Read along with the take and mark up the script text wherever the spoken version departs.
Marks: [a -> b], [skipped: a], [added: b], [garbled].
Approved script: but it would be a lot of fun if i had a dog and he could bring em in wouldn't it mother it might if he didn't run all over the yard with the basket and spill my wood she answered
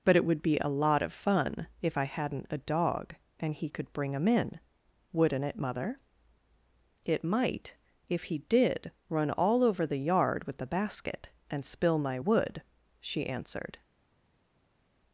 but it would be a lot of fun if i [had -> hadn't] a dog and he could bring em in wouldn't it mother it might if he [didn't -> did] run all over the yard with the basket and spill my wood she answered